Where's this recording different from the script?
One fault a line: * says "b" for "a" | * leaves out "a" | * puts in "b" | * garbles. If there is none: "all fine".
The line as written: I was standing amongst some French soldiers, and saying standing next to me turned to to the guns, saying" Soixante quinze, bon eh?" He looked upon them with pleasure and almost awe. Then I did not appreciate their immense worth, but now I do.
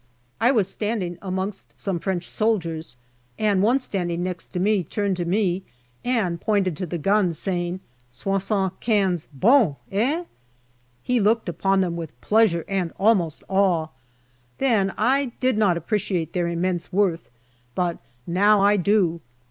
* says "one" for "saying"
* puts in "me and pointed"